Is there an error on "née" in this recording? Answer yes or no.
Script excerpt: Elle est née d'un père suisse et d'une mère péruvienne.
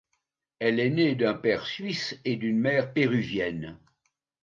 no